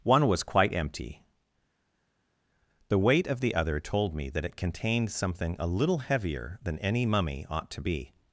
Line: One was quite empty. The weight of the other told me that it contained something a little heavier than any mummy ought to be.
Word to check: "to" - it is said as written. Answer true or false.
true